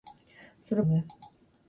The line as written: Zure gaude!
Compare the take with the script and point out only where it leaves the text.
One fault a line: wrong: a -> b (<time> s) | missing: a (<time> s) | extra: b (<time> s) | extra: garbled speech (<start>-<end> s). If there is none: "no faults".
no faults